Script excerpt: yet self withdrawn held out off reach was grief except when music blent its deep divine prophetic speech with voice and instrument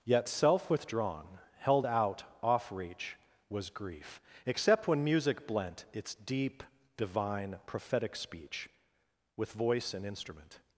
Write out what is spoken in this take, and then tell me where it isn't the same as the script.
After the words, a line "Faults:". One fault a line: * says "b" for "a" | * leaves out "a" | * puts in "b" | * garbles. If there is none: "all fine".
yet self withdrawn held out off reach was grief except when music blent its deep divine prophetic speech with voice and instrument
Faults:
all fine